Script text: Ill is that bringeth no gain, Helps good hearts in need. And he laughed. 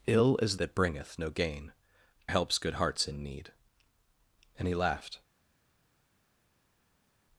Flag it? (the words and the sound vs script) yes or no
no